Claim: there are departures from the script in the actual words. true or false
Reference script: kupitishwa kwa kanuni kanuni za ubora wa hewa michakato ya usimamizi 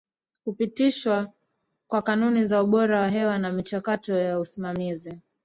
true